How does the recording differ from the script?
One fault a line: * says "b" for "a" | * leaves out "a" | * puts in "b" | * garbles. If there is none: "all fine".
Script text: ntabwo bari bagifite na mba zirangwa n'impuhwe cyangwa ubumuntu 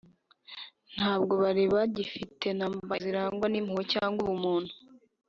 all fine